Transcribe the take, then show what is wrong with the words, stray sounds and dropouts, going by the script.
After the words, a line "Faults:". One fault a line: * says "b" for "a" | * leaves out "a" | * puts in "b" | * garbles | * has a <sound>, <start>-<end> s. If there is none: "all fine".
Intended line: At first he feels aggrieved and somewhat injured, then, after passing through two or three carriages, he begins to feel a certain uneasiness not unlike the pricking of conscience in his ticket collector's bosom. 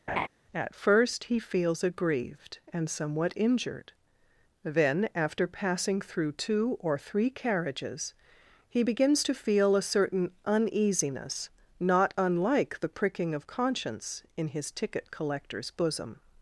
At first he feels aggrieved and somewhat injured, then, after passing through two or three carriages, he begins to feel a certain uneasiness not unlike the pricking of conscience in his ticket collector's bosom.
Faults:
* has a laugh, 0.1-0.3 s